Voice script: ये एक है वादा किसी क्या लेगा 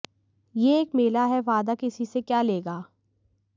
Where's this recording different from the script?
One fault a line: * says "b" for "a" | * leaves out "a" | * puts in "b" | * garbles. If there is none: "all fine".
* puts in "मेला"
* puts in "से"